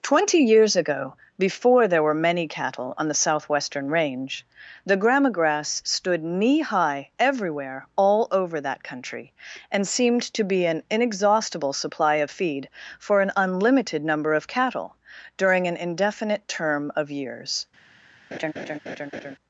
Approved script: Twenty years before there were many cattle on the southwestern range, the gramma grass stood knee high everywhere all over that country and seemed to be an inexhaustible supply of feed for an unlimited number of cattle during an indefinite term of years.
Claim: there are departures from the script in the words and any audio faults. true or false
true